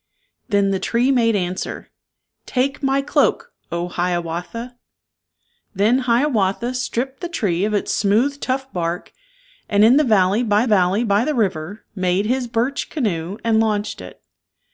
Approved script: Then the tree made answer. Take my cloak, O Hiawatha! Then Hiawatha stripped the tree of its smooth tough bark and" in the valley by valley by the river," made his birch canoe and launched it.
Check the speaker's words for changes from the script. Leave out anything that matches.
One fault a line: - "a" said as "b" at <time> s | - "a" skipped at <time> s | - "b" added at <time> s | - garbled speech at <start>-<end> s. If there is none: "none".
none